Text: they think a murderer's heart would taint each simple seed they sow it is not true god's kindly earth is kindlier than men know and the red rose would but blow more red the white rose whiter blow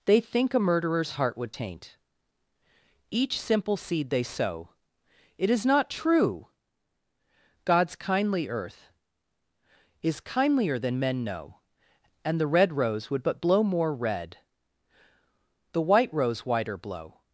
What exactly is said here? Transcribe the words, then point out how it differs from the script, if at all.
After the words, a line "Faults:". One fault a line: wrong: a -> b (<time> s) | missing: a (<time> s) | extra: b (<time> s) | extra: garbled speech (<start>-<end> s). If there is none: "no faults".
they think a murderer's heart would taint each simple seed they sow it is not true god's kindly earth is kindlier than men know and the red rose would but blow more red the white rose whiter blow
Faults:
no faults